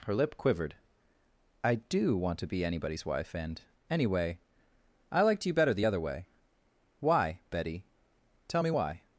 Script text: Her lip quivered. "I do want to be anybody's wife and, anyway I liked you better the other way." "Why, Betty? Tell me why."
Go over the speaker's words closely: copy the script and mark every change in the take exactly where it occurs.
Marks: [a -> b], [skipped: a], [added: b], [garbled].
Her lip quivered. "I do want to be anybody's wife and, anyway I liked you better the other way." "Why, Betty? Tell me why."